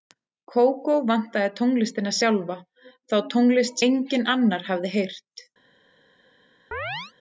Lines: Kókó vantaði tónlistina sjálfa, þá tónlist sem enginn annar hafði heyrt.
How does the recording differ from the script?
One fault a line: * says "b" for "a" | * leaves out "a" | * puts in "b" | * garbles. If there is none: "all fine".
* leaves out "sem"